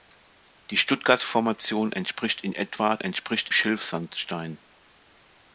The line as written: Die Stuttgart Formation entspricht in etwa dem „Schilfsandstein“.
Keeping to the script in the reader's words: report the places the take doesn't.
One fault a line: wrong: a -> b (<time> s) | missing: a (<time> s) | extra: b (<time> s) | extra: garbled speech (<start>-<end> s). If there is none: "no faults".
wrong: dem -> entspricht (3.0 s)